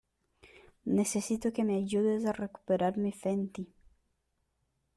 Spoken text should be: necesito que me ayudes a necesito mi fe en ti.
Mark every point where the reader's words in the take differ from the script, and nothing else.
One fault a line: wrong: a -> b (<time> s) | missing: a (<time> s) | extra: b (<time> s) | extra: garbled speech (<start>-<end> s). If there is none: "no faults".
wrong: necesito -> recuperar (2.3 s)